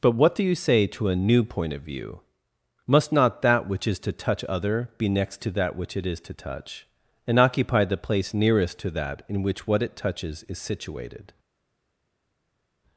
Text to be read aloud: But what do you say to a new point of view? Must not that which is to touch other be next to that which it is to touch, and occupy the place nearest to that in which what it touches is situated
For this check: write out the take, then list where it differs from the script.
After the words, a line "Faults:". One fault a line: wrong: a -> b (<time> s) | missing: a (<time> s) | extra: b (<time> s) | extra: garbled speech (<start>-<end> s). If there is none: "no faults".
But what do you say to a new point of view? Must not that which is to touch other be next to that which it is to touch, and occupy the place nearest to that in which what it touches is situated
Faults:
no faults